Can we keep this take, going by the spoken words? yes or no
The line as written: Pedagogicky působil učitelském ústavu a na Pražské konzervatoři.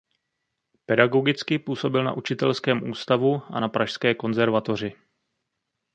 no